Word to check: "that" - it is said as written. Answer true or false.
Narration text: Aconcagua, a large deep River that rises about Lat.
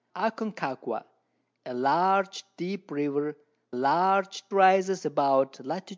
false